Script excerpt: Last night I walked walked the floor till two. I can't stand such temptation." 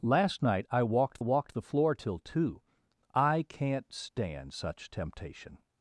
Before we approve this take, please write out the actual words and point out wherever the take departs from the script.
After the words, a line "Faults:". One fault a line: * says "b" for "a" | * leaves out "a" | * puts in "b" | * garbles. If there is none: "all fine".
Last night I walked walked the floor till two. I can't stand such temptation."
Faults:
all fine